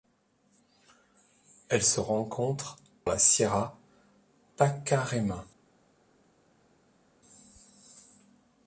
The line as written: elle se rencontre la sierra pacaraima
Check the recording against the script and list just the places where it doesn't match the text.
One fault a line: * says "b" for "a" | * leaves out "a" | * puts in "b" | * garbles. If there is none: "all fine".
all fine